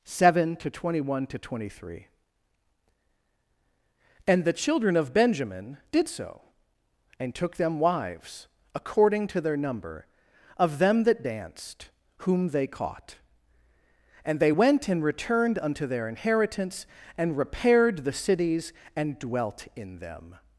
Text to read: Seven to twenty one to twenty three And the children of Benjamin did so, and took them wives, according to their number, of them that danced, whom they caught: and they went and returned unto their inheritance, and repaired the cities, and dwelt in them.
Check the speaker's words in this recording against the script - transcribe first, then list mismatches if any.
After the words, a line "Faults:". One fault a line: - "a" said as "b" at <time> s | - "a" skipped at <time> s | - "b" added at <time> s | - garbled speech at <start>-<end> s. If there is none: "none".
Seven to twenty one to twenty three And the children of Benjamin did so, and took them wives, according to their number, of them that danced, whom they caught: and they went and returned unto their inheritance, and repaired the cities, and dwelt in them.
Faults:
none